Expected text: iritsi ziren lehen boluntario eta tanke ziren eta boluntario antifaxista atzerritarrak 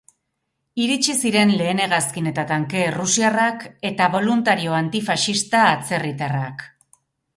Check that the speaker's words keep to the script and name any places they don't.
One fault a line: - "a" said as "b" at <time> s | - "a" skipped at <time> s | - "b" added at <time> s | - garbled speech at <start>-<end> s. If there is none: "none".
- "boluntario" said as "hegazkin" at 1.8 s
- "ziren" said as "errusiarrak" at 2.9 s